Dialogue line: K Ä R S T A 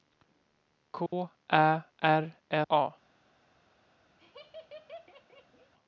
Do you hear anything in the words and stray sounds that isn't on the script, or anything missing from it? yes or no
yes